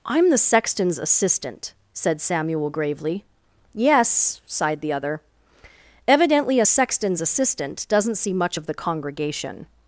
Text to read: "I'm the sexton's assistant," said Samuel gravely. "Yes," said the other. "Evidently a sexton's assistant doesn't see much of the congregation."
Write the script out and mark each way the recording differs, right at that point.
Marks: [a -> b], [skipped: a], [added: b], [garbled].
"I'm the sexton's assistant," said Samuel gravely. "Yes," [said -> sighed] the other. "Evidently a sexton's assistant doesn't see much of the congregation."